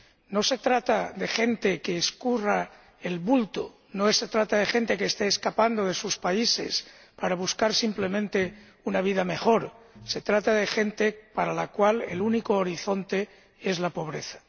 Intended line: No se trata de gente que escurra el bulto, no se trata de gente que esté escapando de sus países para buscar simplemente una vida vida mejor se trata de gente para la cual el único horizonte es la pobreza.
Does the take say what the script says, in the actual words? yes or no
no